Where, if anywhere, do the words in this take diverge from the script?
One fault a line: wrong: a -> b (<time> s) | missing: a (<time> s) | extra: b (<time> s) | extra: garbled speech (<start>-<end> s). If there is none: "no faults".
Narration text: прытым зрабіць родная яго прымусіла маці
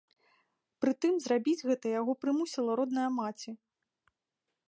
wrong: родная -> гэта (1.7 s)
extra: родная (2.8 s)